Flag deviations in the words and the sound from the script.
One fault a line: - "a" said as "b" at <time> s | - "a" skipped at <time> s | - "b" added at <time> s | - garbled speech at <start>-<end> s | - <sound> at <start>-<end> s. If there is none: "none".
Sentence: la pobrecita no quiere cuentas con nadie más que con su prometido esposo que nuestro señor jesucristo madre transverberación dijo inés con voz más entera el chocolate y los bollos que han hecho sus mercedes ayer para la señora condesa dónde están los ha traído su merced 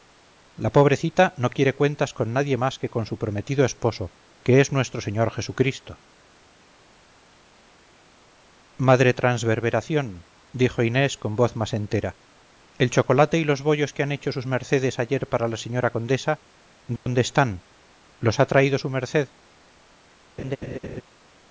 - "es" added at 4.6 s
- dropout at 17.0-17.1 s
- laugh at 20.4-21.0 s